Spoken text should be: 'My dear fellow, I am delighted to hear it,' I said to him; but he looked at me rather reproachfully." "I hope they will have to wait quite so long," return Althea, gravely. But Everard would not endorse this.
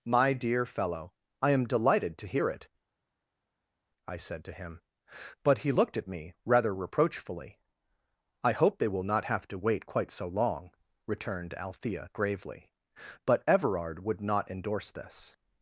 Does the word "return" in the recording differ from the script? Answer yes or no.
yes